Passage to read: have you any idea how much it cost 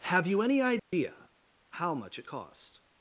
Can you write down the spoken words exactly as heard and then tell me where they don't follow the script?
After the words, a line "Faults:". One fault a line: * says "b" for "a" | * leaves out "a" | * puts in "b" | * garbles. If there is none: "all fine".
have you any idea how much it cost
Faults:
all fine